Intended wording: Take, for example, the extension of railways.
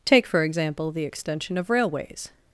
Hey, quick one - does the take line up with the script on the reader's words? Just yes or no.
yes